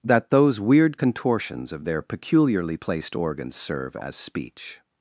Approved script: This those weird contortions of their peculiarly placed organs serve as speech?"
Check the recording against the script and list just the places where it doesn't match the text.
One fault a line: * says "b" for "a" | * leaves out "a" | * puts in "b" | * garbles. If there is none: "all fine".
* says "That" for "This"